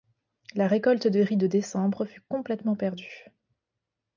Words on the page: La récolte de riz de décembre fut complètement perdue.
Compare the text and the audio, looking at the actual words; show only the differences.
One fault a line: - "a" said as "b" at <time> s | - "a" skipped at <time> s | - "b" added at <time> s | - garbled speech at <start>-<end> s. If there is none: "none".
none